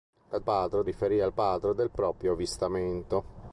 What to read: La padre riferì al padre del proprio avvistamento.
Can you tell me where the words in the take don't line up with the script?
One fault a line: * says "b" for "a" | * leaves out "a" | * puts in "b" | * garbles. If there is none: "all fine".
all fine